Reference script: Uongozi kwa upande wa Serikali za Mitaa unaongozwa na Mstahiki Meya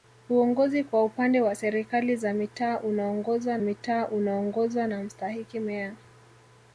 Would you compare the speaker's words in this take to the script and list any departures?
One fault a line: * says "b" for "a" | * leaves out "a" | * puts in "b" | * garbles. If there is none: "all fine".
* puts in "Mitaa unaongozwa"